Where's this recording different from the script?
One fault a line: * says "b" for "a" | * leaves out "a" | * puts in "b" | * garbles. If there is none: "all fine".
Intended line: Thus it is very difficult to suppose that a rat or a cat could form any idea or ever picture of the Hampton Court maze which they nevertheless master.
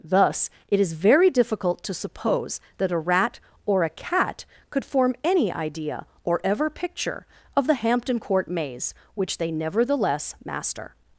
all fine